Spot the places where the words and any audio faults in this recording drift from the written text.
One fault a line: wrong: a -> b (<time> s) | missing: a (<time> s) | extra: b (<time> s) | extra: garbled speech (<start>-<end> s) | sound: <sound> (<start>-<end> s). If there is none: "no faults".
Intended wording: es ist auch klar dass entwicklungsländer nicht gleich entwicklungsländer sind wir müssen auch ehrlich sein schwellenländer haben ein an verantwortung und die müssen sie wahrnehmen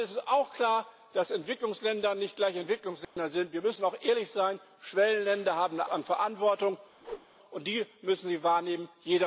sound: dropout (3.0-3.2 s)
sound: whoosh (7.0-7.3 s)